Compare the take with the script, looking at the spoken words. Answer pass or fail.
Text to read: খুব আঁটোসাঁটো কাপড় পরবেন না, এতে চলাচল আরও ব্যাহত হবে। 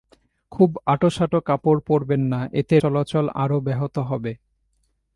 pass